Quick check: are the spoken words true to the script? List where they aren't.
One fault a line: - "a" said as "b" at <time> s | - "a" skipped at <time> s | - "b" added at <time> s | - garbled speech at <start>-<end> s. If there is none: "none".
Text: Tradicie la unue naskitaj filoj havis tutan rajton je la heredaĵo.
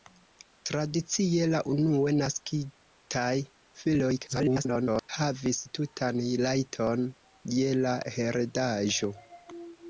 - garbled speech at 4.3-5.1 s